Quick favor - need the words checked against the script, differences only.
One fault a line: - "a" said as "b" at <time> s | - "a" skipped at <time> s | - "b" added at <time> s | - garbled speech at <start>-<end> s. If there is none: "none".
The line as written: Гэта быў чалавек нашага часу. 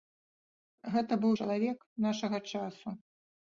none